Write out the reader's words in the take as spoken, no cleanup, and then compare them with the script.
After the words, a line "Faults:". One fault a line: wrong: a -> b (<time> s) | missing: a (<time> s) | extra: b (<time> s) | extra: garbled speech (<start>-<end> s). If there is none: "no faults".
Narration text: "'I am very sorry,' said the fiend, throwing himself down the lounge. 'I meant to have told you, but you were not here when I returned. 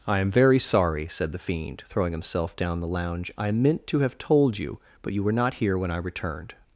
"'I am very sorry,' said the fiend, throwing himself down the lounge. 'I meant to have told you, but you were not here when I returned.
Faults:
no faults